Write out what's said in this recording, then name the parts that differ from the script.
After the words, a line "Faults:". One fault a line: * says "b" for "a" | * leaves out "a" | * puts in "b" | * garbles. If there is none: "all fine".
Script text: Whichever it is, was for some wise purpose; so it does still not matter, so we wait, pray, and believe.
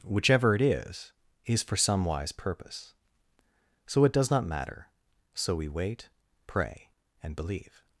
Whichever it is, is for some wise purpose; so it does not matter, so we wait, pray, and believe.
Faults:
* says "is" for "was"
* leaves out "still"